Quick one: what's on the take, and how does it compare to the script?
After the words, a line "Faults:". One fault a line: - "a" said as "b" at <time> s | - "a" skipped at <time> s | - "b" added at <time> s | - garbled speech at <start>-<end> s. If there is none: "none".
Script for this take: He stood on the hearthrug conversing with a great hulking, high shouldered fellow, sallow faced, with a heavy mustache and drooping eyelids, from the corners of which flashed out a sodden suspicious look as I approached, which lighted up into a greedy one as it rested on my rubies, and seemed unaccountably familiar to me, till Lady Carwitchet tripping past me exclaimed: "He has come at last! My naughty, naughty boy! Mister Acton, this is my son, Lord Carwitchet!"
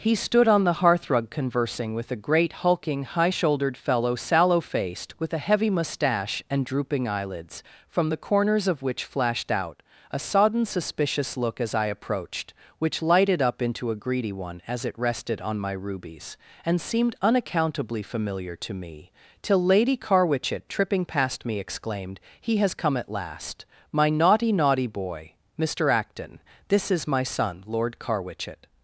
He stood on the hearthrug conversing with a great hulking, high shouldered fellow, sallow faced, with a heavy mustache and drooping eyelids, from the corners of which flashed out a sodden suspicious look as I approached, which lighted up into a greedy one as it rested on my rubies, and seemed unaccountably familiar to me, till Lady Carwitchet tripping past me exclaimed: "He has come at last! My naughty, naughty boy! Mister Acton, this is my son, Lord Carwitchet!"
Faults:
none